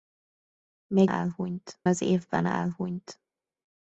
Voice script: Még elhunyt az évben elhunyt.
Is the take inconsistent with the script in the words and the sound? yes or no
no